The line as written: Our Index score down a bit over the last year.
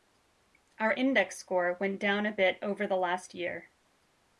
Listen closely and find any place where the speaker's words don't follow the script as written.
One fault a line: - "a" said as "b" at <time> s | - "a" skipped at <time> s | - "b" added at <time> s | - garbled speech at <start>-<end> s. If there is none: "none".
- "went" added at 1.8 s